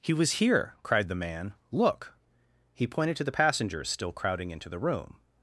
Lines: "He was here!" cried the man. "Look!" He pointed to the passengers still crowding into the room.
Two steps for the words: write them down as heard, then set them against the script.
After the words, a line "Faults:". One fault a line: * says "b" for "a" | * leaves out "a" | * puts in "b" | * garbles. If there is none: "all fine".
"He was here!" cried the man. "Look!" He pointed to the passengers still crowding into the room.
Faults:
all fine